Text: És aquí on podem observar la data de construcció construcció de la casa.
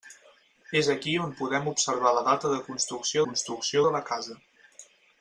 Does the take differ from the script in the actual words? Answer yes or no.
no